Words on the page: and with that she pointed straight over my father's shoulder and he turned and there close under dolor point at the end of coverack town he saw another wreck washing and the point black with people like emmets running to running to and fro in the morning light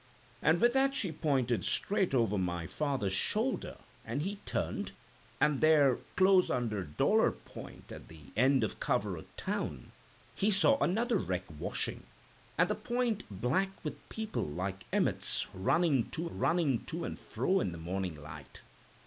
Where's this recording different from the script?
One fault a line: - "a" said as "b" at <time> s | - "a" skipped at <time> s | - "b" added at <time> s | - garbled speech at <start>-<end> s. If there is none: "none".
none